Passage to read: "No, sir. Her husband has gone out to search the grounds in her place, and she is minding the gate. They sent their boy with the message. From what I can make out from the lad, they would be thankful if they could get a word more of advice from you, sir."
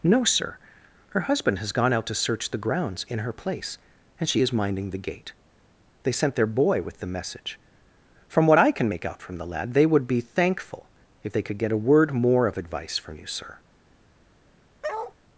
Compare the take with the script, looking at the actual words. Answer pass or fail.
pass